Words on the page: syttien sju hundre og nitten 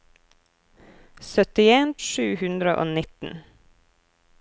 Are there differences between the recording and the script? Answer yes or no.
no